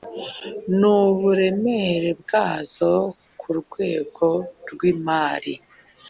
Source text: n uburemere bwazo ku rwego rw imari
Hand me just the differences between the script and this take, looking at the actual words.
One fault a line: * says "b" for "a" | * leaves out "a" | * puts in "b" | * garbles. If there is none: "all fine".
all fine